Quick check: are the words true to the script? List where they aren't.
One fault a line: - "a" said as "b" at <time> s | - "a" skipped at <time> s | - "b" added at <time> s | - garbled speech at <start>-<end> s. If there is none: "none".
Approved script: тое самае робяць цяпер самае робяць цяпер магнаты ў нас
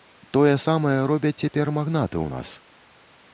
- "самае робяць цяпер" skipped at 1.7 s